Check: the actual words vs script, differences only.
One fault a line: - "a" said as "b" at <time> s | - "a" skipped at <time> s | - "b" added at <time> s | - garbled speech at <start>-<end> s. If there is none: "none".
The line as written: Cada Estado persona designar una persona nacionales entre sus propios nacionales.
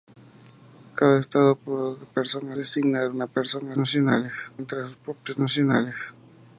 none